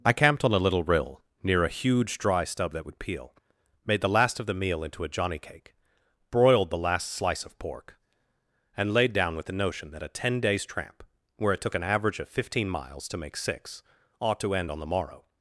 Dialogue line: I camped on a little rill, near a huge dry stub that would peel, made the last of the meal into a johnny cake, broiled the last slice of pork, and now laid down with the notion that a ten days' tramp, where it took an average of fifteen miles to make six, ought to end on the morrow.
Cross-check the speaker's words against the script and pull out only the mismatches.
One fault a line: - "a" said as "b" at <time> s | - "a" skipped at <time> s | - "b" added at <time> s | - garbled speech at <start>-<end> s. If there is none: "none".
- "now" skipped at 8.9 s